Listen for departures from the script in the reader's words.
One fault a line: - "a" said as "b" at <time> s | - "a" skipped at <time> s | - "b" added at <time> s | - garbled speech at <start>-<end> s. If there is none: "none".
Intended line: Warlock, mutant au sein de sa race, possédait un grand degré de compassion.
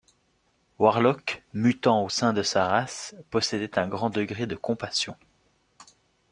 none